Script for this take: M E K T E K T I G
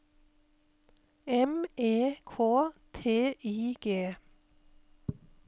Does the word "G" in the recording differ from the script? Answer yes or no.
no